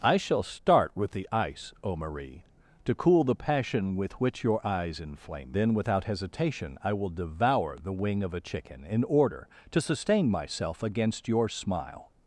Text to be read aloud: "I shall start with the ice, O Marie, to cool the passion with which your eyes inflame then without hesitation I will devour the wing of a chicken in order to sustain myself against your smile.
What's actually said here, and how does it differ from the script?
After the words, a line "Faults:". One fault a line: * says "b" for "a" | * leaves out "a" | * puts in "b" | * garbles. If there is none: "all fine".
"I shall start with the ice, O Marie, to cool the passion with which your eyes inflame then without hesitation I will devour the wing of a chicken in order to sustain myself against your smile.
Faults:
all fine